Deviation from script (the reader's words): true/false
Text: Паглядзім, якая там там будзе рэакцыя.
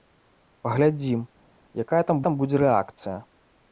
false